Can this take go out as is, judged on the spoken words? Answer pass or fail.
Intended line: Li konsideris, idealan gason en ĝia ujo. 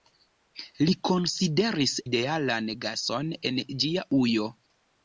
pass